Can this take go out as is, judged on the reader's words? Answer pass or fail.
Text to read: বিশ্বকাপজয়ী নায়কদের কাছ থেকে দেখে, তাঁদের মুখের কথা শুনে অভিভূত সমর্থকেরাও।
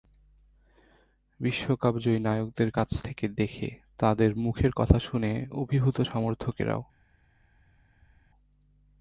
pass